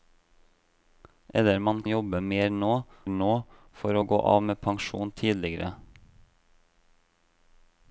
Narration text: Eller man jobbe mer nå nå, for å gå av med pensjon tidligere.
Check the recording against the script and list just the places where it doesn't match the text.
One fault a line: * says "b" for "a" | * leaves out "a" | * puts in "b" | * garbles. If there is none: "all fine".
all fine